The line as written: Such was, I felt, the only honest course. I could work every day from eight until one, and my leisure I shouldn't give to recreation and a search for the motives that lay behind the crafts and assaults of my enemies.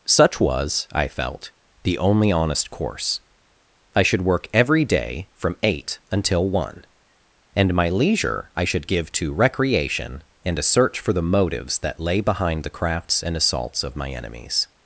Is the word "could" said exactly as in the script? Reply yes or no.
no